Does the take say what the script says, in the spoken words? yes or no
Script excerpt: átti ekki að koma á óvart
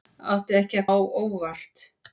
no